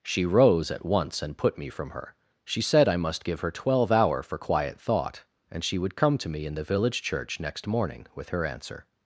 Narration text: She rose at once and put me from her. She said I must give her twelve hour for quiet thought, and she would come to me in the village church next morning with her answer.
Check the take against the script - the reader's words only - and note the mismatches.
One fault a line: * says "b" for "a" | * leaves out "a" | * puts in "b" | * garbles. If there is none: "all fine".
all fine